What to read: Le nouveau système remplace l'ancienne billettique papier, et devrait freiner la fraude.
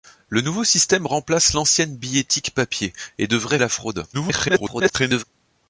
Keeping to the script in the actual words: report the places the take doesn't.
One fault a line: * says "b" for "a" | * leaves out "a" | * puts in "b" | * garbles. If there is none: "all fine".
* leaves out "freiner"
* garbles